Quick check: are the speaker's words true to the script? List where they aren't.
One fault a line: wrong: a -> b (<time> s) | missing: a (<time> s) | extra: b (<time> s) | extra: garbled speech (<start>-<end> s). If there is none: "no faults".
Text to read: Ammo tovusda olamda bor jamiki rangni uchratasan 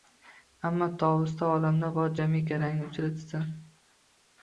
no faults